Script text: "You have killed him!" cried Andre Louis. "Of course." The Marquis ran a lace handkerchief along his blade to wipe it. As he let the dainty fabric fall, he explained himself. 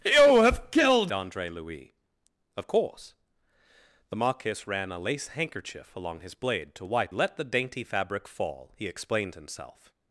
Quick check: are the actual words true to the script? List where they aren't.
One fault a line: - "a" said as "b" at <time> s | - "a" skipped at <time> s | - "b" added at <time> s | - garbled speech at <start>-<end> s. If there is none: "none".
- "him cried" skipped at 1.1 s
- "it As he" skipped at 7.1 s